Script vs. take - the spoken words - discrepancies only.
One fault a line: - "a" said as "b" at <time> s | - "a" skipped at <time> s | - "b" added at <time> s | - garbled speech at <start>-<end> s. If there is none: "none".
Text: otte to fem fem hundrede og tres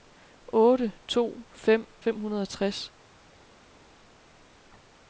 none